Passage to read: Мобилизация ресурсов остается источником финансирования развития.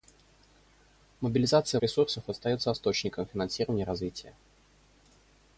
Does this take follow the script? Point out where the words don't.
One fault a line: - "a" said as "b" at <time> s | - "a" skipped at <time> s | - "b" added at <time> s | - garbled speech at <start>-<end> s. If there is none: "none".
none